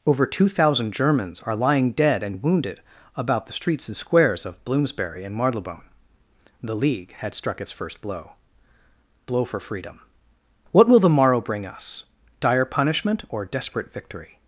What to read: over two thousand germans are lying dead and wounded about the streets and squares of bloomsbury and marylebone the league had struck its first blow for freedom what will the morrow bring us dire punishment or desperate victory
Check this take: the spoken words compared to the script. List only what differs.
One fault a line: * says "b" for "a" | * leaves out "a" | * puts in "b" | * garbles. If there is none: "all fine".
* puts in "blow"